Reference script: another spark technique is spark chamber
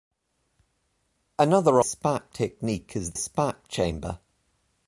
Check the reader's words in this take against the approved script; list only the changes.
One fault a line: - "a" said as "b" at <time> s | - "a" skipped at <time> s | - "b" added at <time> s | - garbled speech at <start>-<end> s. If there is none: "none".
none